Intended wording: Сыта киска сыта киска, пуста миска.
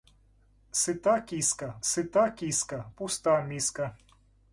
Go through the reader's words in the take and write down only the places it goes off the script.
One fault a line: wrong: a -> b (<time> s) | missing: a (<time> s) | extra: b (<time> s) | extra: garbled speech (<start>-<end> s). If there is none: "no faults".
no faults